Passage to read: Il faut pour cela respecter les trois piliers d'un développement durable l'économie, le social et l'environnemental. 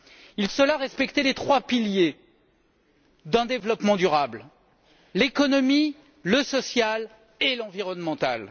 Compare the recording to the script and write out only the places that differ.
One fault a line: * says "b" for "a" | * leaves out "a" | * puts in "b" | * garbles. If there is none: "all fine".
* leaves out "faut pour"